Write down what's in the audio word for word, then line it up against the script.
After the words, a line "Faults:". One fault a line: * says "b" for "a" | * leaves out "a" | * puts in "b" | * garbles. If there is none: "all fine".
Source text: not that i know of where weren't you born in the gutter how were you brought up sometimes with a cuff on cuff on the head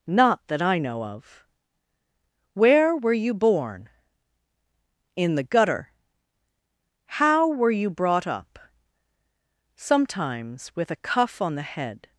not that i know of where were you born in the gutter how were you brought up sometimes with a cuff on the head
Faults:
* says "were" for "weren't"
* leaves out "cuff on"